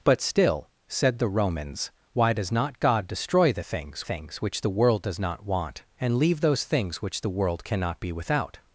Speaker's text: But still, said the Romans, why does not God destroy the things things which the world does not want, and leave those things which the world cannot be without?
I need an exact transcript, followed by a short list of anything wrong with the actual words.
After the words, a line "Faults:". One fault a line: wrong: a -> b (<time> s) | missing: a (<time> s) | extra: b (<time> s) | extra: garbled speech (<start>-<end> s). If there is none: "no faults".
But still, said the Romans, why does not God destroy the things things which the world does not want, and leave those things which the world cannot be without?
Faults:
no faults